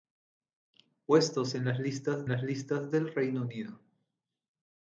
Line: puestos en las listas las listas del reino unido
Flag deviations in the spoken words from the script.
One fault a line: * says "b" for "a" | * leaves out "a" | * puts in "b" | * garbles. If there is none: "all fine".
all fine